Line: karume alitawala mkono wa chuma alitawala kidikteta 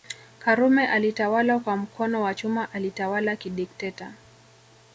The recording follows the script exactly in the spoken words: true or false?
false